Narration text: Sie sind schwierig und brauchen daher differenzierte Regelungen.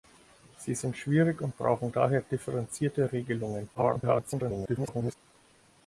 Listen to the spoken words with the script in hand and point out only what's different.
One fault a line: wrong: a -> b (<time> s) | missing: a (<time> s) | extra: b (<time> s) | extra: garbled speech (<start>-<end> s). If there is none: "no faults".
extra: garbled speech (3.7-5.1 s)